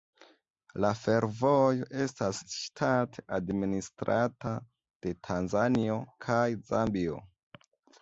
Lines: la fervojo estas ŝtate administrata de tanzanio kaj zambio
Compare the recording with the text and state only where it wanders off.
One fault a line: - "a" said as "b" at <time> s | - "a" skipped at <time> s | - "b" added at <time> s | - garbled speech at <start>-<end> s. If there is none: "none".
none